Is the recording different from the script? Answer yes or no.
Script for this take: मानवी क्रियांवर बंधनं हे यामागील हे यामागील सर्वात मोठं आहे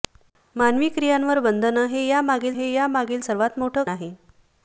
no